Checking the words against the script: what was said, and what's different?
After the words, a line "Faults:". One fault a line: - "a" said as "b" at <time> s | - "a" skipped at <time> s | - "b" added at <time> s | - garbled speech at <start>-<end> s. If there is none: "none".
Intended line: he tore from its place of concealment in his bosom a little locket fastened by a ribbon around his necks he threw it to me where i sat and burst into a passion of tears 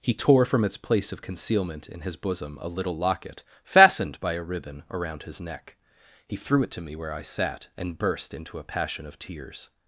he tore from its place of concealment in his bosom a little locket fastened by a ribbon around his neck he threw it to me where i sat and burst into a passion of tears
Faults:
- "necks" said as "neck" at 5.4 s